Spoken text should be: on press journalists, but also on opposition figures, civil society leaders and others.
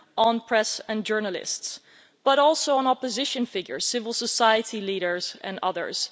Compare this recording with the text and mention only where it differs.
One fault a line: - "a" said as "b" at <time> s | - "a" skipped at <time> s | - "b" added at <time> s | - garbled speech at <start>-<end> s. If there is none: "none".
- "and" added at 0.9 s